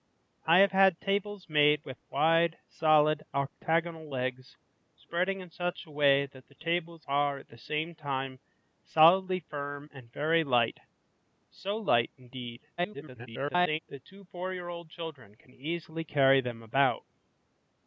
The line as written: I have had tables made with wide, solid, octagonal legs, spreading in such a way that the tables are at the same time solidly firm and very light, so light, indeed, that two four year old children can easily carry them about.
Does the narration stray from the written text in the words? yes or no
yes